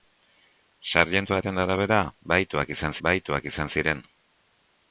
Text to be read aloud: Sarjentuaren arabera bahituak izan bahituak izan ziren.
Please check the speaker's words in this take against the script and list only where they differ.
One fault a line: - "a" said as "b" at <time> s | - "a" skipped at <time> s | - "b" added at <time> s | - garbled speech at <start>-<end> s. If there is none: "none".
none